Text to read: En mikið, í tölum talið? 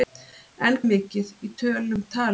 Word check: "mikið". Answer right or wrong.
right